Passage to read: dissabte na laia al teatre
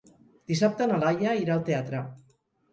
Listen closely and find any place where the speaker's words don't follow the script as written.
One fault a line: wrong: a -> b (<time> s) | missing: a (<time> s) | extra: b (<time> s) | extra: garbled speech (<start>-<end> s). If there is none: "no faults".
extra: irà (1.4 s)